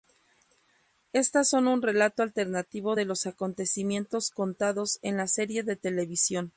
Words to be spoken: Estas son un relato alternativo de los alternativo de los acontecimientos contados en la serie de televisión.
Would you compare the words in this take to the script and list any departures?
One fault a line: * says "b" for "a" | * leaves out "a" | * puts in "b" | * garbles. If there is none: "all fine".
* leaves out "alternativo de los"